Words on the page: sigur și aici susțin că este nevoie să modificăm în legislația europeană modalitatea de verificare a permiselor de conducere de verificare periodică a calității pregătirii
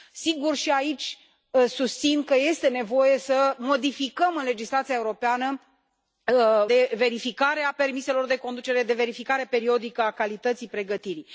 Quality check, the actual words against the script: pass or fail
fail